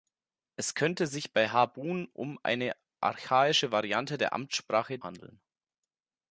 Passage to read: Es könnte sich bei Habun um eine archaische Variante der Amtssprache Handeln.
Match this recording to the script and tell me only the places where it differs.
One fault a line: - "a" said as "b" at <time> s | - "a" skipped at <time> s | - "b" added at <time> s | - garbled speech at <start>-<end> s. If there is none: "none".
none